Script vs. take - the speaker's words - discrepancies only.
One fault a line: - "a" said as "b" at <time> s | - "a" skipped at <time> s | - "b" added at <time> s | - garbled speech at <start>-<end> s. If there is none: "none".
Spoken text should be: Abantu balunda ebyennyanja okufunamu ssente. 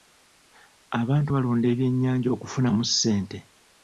none